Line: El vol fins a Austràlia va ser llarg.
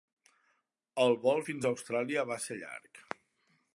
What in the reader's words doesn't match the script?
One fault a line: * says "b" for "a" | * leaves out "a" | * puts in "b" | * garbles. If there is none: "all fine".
all fine